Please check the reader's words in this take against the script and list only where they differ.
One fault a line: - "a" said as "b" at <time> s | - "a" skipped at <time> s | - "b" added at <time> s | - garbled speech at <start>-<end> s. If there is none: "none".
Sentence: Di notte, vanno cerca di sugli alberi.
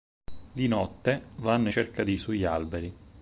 none